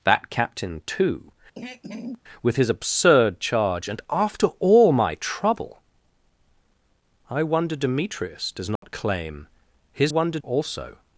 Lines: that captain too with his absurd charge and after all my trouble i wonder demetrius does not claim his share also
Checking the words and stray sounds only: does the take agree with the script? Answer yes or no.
no